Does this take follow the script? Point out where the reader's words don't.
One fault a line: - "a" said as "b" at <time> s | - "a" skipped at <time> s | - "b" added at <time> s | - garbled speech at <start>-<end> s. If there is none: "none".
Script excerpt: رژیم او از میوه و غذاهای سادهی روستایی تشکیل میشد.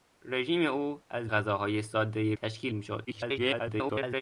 - "میوه و" skipped at 1.3 s
- "روستایی" skipped at 2.3 s
- garbled speech at 3.1-4.2 s